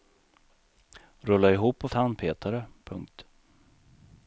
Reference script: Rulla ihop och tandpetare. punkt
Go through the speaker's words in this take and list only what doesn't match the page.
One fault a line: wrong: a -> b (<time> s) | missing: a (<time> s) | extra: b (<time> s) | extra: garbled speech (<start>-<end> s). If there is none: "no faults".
no faults